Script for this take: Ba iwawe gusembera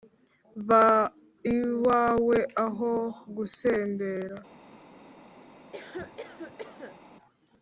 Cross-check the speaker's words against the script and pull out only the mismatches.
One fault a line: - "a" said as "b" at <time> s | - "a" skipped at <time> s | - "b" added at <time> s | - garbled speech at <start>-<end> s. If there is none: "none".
- "aho" added at 2.7 s